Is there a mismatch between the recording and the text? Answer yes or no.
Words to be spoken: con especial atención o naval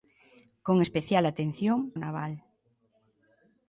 no